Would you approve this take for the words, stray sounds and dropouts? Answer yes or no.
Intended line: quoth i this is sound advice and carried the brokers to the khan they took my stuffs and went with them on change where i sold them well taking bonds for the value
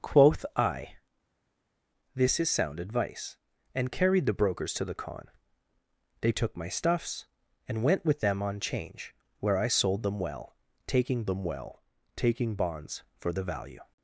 no